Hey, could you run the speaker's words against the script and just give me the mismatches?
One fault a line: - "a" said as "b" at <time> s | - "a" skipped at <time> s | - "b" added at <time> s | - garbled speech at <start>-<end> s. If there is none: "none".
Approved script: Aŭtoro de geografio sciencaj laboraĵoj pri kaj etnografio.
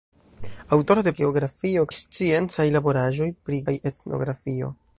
none